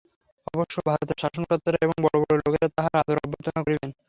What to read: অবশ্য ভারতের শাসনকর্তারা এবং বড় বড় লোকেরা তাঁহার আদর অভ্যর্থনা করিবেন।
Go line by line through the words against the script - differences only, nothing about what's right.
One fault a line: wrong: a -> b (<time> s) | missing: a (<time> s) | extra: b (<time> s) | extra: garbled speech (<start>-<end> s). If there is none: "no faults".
no faults